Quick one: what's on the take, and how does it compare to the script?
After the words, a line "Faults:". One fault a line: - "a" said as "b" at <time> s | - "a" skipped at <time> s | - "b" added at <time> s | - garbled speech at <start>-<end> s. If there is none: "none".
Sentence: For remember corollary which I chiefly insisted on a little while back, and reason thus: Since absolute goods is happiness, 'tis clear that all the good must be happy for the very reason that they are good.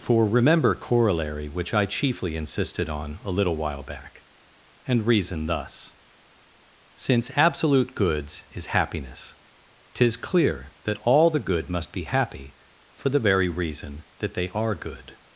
For remember corollary which I chiefly insisted on a little while back, and reason thus: Since absolute goods is happiness, 'tis clear that all the good must be happy for the very reason that they are good.
Faults:
none